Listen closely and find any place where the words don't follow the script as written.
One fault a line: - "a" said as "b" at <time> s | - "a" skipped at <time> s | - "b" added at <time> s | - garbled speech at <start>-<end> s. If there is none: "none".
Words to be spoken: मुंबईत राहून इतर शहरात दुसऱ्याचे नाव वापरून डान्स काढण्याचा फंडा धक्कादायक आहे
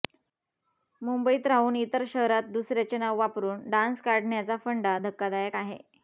none